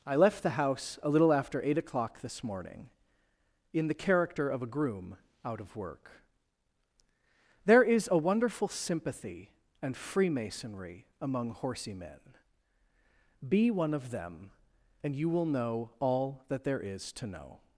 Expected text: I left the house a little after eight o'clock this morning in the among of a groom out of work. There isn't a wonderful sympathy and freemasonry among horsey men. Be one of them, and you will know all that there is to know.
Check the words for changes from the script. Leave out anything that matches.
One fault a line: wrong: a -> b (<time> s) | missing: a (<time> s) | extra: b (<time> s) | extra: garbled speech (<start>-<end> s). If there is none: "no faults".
wrong: among -> character (3.9 s)
wrong: isn't -> is (7.8 s)